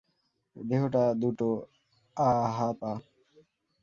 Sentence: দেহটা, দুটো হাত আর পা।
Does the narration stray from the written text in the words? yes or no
yes